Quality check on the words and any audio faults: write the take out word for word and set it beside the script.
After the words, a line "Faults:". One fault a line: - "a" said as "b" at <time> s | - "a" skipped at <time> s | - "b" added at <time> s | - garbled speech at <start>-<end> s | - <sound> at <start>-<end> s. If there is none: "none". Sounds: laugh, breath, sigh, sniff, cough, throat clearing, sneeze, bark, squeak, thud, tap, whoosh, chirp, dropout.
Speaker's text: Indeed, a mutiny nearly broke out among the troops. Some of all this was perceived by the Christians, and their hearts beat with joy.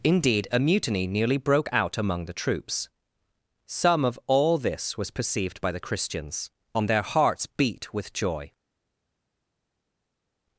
Indeed, a mutiny nearly broke out among the troops. Some of all this was perceived by the Christians, and their hearts beat with joy.
Faults:
none